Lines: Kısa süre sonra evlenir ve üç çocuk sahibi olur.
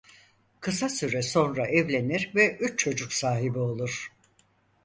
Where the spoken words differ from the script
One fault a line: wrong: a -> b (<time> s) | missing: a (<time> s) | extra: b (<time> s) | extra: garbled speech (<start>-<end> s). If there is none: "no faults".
no faults